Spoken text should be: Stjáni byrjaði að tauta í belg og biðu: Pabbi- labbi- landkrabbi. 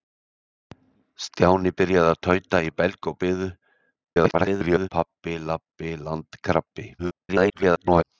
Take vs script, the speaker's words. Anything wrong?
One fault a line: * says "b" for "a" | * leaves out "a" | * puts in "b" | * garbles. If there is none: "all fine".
* garbles
* garbles